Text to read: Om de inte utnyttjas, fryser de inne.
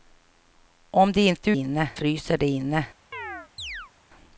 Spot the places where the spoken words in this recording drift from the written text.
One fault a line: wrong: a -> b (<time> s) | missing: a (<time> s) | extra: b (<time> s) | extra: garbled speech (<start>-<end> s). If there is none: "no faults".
wrong: utnyttjas -> inne (1.5 s)